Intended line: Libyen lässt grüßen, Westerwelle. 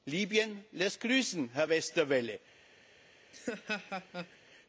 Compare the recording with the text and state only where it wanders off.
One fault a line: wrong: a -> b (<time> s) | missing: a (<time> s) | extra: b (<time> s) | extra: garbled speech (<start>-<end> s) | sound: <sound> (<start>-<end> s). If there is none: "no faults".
extra: Herr (1.5 s)
sound: laugh (3.3-4.4 s)